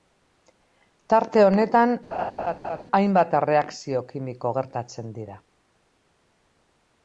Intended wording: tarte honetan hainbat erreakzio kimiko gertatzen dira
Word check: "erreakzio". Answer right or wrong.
right